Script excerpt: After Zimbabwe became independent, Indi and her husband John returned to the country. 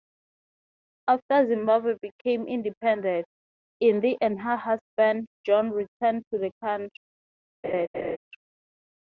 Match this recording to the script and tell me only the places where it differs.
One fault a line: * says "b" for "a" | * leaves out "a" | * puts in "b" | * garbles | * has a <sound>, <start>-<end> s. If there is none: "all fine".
* has a laugh, 7.6-8.2 s